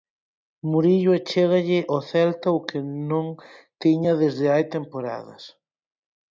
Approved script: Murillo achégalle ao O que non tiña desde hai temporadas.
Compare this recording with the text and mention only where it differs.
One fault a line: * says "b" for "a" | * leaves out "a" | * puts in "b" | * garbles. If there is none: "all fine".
* puts in "Celta"